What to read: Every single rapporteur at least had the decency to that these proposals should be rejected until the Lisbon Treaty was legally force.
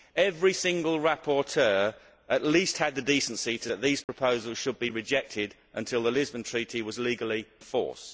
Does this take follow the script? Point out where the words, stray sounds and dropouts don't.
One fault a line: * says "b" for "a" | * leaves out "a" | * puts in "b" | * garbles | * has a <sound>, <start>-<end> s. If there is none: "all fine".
* has a dropout, 4.0-4.1 s